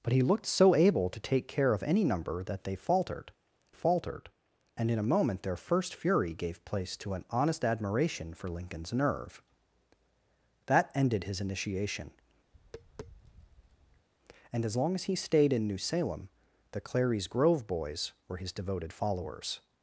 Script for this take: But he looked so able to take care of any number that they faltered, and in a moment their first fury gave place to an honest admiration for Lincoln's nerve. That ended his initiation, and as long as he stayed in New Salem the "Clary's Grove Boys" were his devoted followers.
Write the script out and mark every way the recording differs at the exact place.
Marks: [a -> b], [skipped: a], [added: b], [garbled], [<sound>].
But he looked so able to take care of any number that they faltered, [added: faltered] and in a moment their first fury gave place to an honest admiration for Lincoln's nerve. That ended his initiation, [tap] and as long as he stayed in New Salem the "Clary's Grove Boys" were his devoted followers.